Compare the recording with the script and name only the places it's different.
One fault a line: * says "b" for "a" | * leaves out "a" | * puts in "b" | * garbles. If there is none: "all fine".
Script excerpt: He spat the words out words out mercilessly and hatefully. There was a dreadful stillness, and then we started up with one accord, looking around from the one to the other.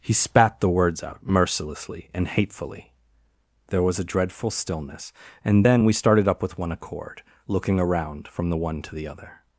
* leaves out "words out"